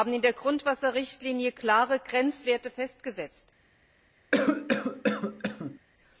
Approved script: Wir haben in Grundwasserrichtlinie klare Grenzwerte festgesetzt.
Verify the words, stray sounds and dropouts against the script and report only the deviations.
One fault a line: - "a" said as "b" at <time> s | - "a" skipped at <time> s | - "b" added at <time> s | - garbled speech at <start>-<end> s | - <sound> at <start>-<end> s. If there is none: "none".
- "der" added at 0.2 s
- cough at 4.3-5.8 s